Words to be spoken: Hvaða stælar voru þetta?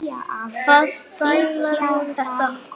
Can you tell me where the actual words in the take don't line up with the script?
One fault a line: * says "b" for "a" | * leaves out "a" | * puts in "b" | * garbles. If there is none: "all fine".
all fine